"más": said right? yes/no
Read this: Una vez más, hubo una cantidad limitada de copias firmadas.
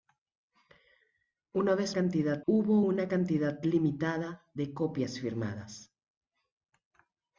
no